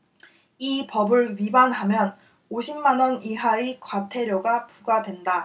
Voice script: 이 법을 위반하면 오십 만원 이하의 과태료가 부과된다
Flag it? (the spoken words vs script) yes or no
no